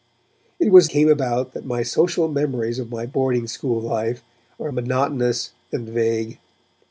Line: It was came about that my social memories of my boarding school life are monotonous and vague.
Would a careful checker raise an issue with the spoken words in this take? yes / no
no